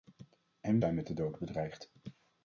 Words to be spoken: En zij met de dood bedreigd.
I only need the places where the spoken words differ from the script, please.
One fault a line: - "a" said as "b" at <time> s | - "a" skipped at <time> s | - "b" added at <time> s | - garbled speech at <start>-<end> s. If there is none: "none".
none